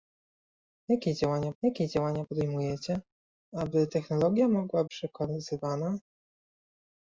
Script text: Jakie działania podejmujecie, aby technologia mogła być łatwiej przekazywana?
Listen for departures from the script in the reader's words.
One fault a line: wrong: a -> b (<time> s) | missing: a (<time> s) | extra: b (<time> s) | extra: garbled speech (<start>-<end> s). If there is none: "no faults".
extra: jakie działania (1.6 s)
missing: być łatwiej (4.8 s)